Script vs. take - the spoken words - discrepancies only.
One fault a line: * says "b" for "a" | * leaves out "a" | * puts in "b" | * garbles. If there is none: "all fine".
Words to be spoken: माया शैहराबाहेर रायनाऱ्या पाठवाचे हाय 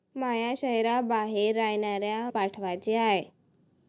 all fine